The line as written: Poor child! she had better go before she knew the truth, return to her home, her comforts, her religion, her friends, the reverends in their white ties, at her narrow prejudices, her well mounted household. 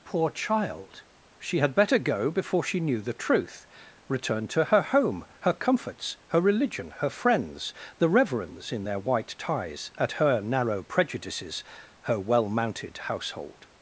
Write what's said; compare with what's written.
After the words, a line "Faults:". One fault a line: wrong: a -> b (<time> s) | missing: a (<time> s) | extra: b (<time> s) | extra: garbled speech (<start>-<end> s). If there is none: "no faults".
Poor child! she had better go before she knew the truth, return to her home, her comforts, her religion, her friends, the reverends in their white ties, at her narrow prejudices, her well mounted household.
Faults:
no faults